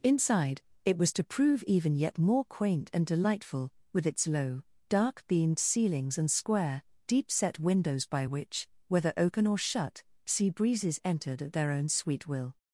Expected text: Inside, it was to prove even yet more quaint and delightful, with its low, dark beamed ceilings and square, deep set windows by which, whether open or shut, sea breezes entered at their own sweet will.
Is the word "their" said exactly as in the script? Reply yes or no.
yes